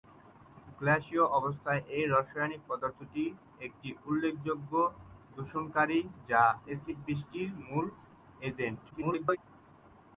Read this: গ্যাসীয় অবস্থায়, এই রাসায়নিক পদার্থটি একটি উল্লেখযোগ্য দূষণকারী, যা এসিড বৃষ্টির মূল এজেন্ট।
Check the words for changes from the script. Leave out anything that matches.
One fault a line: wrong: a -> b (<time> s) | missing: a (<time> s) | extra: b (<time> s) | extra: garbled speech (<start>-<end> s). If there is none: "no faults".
extra: garbled speech (8.9-9.4 s)